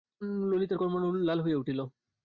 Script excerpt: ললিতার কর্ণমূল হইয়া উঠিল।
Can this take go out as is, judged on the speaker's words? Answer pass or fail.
fail